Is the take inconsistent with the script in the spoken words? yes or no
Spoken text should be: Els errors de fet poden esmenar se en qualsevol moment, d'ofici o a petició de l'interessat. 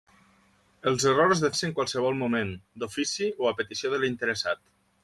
yes